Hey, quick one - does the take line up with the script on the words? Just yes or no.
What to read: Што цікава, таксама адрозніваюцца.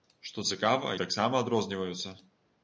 yes